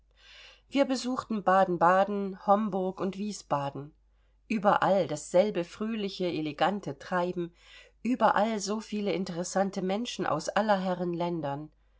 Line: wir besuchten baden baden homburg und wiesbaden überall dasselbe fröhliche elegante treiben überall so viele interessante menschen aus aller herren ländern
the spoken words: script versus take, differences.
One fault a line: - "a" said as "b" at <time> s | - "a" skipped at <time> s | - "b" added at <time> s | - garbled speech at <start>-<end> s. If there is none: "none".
none